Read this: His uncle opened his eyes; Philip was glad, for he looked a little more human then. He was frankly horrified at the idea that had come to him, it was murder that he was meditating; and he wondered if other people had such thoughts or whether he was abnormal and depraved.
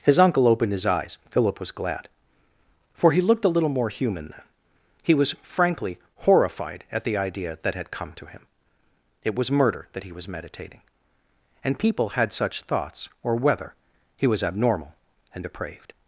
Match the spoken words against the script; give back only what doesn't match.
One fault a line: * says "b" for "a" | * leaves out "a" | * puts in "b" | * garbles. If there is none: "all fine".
* leaves out "he wondered if other"